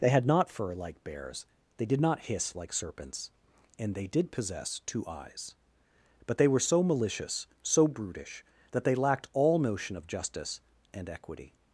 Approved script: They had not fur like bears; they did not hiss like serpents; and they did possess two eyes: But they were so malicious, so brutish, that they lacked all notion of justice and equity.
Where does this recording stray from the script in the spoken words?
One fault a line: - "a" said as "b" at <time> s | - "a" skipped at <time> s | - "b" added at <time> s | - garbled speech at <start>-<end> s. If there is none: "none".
none